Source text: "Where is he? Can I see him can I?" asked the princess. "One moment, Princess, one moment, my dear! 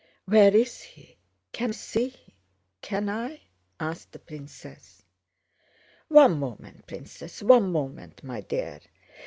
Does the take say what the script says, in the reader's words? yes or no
no